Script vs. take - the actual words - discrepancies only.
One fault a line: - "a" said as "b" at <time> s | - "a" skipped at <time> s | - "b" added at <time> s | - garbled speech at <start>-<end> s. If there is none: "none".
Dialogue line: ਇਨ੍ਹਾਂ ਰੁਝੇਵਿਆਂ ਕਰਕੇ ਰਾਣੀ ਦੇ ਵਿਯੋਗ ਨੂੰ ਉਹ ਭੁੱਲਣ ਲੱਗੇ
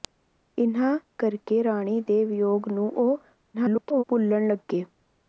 - "ਰੁਝੇਵਿਆਂ" skipped at 1.0 s
- garbled speech at 3.5-4.0 s